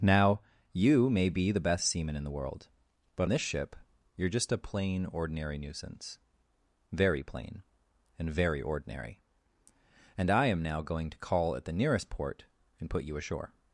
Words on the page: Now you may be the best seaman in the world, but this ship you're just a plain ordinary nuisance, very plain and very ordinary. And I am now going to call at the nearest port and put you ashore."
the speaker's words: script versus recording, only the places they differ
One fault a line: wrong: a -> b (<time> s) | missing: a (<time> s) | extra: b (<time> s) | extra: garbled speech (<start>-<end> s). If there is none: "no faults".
no faults